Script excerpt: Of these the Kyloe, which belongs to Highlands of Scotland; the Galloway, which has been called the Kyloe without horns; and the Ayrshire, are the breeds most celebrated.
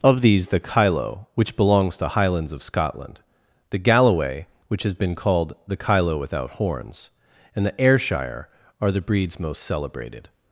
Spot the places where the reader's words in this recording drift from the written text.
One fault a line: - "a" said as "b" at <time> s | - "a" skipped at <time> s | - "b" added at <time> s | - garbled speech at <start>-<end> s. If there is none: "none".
none